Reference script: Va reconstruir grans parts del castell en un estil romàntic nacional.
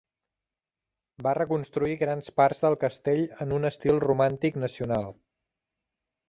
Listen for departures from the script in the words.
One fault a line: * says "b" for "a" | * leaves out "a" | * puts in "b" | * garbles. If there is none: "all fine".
all fine